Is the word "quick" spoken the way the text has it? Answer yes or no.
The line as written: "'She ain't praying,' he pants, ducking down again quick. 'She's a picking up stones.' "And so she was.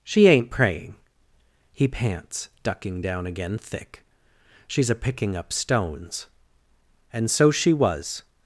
no